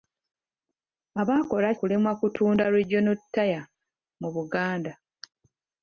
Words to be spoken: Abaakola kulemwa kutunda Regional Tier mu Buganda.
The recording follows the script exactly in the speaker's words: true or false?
true